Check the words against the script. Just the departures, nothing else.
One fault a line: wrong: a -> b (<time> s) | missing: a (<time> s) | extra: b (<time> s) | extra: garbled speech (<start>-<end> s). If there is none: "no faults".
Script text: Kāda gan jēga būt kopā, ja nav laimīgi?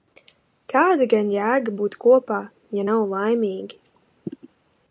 no faults